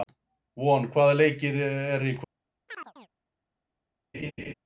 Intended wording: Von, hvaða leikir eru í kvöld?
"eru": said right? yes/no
yes